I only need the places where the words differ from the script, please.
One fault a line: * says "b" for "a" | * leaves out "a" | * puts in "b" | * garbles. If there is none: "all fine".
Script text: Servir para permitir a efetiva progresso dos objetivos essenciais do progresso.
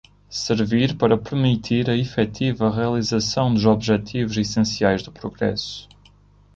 * says "realização" for "progresso"